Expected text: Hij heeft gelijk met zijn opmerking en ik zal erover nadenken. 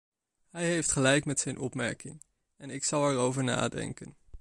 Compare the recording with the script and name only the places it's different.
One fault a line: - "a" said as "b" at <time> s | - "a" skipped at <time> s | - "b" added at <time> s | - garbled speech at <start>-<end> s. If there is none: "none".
none